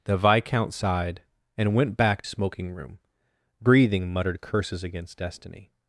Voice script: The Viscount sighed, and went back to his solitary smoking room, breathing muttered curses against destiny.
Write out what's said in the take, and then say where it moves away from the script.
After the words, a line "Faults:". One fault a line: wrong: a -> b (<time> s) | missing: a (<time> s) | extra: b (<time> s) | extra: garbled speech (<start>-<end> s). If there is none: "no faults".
The Viscount sighed, and went back smoking room, breathing muttered curses against destiny.
Faults:
missing: to his solitary (2.2 s)